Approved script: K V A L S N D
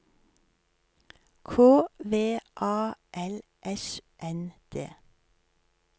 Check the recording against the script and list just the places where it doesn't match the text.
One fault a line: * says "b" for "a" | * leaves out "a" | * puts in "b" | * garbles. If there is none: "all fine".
all fine